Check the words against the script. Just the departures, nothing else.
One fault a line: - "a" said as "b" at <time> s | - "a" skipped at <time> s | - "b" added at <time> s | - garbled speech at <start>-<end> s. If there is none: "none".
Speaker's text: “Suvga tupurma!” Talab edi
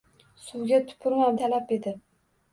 none